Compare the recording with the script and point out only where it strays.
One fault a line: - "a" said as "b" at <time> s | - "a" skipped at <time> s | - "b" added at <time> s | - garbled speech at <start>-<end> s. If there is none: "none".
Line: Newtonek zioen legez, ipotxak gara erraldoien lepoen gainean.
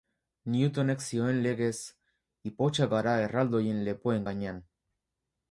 none